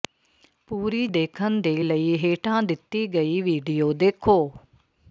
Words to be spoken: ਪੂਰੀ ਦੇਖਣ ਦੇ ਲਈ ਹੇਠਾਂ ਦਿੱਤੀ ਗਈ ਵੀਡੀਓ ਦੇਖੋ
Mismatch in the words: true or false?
false